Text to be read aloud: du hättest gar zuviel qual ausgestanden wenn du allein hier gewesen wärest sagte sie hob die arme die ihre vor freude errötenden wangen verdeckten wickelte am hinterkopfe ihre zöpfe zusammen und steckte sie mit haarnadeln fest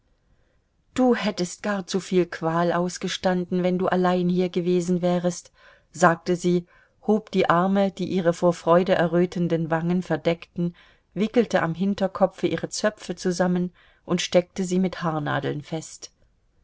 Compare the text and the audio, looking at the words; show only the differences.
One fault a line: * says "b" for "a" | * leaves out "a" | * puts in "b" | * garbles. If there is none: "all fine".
all fine